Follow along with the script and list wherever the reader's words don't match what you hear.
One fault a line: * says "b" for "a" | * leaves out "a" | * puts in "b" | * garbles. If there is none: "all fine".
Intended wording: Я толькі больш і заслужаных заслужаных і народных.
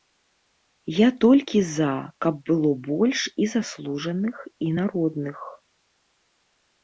* puts in "за каб было"
* leaves out "заслужаных"